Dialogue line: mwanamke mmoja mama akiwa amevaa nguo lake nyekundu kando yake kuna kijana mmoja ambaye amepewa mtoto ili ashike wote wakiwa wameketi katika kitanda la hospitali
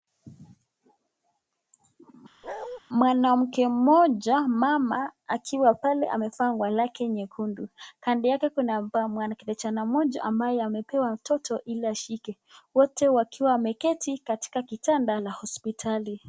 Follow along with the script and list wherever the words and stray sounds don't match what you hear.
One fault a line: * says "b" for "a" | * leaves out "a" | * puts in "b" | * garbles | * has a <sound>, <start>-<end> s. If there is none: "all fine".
* has a bark, 2.4-2.8 s
* puts in "pale"